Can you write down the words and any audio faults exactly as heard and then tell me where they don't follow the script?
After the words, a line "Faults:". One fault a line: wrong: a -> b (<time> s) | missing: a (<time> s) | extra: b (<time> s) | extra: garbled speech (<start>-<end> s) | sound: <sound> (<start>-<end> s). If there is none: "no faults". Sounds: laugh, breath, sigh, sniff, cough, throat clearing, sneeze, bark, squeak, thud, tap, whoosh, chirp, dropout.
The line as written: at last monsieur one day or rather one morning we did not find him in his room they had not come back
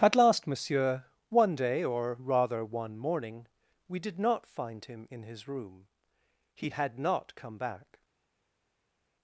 at last monsieur one day or rather one morning we did not find him in his room he had not come back
Faults:
wrong: they -> he (6.5 s)